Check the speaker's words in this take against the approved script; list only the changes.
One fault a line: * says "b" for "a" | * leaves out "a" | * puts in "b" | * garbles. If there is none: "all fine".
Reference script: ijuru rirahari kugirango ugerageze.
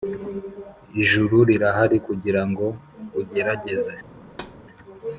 all fine